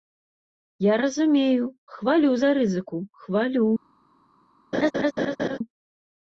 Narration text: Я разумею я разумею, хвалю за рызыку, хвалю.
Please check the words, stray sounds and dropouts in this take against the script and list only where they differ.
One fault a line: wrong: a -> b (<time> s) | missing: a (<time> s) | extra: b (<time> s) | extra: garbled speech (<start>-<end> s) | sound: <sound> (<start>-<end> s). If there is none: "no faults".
missing: я разумею (1.6 s)
sound: laugh (4.7-5.6 s)